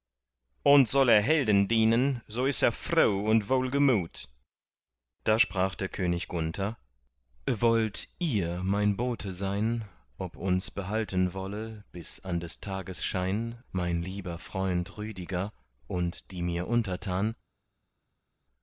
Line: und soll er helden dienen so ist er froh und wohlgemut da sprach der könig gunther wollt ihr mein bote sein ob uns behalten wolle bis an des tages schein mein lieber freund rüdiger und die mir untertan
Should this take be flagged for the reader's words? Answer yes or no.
no